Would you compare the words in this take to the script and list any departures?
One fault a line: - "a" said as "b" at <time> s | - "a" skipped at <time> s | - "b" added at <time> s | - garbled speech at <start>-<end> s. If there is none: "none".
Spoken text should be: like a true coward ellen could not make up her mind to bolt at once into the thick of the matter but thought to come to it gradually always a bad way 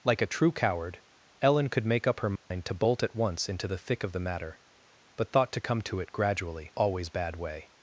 - "not" skipped at 1.9 s
- "a" skipped at 7.1 s